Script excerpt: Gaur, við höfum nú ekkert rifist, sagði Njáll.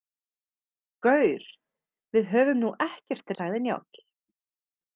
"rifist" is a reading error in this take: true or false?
true